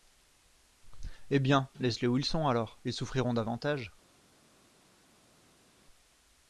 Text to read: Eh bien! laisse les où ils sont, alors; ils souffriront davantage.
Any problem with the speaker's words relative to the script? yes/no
no